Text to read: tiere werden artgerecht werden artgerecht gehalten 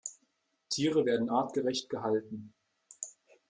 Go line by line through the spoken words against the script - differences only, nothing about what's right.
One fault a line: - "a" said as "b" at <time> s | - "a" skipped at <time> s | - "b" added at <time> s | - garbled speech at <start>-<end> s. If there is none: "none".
- "werden artgerecht" skipped at 1.9 s